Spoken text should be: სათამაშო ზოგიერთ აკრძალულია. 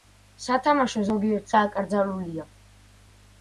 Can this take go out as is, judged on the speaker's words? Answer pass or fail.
pass